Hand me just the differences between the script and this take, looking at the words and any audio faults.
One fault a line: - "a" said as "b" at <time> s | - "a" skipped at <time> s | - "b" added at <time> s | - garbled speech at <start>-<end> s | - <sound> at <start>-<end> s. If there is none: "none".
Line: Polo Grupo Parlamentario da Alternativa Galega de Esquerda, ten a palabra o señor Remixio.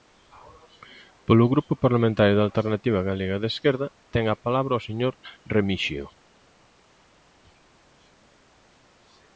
none